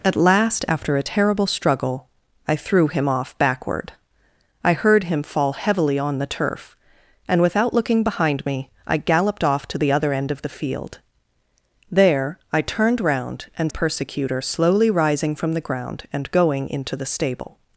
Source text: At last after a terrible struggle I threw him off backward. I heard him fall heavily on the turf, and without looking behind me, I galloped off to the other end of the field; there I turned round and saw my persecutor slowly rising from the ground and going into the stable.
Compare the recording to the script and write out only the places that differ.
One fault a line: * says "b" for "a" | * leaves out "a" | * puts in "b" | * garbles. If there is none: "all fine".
* leaves out "saw my"